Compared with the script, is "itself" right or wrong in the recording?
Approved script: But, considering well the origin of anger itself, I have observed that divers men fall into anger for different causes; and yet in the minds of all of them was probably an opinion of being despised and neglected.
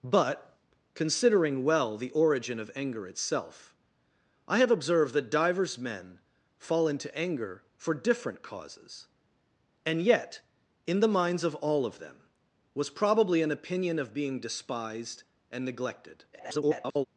right